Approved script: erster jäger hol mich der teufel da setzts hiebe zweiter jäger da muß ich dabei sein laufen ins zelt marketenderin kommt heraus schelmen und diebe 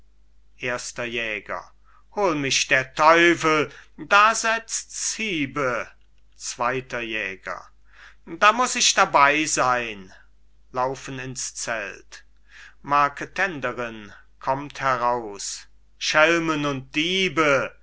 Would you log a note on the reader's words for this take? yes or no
no